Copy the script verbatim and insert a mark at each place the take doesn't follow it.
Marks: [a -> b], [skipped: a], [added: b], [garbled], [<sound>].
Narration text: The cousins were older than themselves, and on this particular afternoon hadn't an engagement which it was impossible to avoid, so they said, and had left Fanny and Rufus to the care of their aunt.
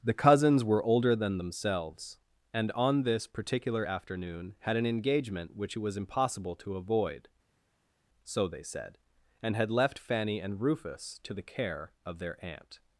The cousins were older than themselves, and on this particular afternoon [hadn't -> had] an engagement which it was impossible to avoid, so they said, and had left Fanny and Rufus to the care of their aunt.